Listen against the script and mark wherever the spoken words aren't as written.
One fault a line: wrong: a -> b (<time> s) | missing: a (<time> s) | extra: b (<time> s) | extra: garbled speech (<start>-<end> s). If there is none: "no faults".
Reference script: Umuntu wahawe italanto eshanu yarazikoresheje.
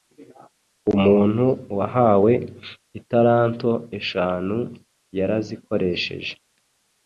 no faults